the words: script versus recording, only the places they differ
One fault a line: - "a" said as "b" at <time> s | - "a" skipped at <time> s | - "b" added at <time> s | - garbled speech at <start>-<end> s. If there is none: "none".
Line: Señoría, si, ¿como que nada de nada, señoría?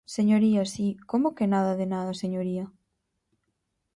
none